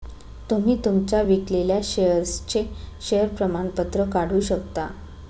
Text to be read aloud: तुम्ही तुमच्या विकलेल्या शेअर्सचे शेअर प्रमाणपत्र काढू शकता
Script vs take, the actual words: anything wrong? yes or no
no